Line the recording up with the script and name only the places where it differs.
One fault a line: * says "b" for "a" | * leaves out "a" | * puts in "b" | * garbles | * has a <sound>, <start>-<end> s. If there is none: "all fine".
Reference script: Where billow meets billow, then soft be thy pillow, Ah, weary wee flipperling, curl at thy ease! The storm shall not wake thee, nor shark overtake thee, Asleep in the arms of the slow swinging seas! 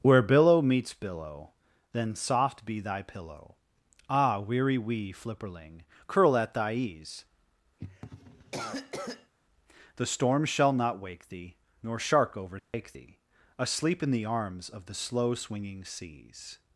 * has a cough, 7.8-9.3 s
* has a dropout, 12.6-12.7 s